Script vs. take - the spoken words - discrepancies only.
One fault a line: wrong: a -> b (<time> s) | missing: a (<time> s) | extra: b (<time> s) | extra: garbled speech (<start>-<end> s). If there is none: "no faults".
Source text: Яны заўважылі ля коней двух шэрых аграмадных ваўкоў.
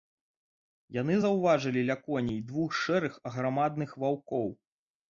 no faults